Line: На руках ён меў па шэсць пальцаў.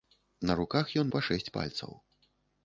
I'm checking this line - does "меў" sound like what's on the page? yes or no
no